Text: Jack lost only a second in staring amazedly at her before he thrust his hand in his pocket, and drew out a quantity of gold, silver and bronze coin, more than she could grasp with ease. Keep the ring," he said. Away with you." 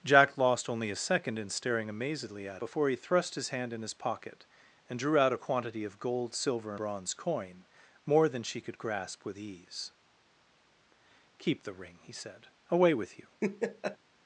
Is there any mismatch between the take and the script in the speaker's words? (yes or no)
yes